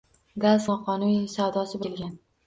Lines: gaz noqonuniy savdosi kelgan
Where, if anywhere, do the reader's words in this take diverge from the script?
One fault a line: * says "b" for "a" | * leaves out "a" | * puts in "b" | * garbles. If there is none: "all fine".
all fine